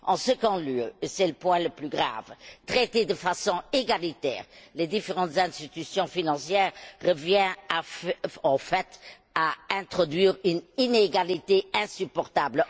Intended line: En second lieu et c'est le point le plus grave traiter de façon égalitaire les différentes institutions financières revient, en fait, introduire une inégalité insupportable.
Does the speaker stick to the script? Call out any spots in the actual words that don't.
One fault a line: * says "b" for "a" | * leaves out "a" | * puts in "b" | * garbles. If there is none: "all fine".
* puts in "à"